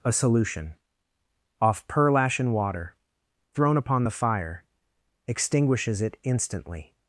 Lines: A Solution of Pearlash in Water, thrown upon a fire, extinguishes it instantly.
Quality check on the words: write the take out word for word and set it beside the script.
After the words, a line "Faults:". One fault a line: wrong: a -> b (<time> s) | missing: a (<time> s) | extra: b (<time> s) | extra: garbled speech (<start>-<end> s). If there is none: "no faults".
A Solution off Pearlash in Water, thrown upon the fire, extinguishes it instantly.
Faults:
wrong: of -> off (1.6 s)
wrong: a -> the (4.0 s)